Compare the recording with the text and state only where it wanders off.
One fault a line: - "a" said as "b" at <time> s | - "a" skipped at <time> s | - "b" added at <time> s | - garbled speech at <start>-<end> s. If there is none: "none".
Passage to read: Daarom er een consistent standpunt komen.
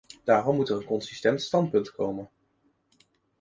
- "moet" added at 0.6 s